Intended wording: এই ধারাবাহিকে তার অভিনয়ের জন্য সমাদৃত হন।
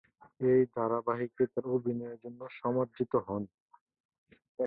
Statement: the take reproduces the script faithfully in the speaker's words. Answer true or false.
true